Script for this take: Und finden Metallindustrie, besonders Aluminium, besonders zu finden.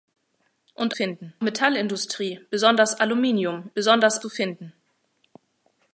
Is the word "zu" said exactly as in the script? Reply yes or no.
yes